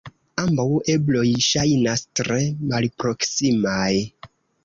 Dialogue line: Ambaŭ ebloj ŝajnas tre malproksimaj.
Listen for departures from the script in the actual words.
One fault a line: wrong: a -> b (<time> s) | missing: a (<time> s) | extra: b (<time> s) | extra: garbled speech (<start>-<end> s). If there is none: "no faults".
no faults